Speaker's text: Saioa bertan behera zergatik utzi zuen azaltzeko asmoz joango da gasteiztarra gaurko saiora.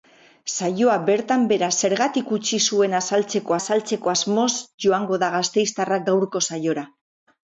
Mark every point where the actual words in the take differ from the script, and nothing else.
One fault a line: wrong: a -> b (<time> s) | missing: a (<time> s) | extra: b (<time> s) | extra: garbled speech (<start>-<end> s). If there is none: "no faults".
extra: azaltzeko (3.6 s)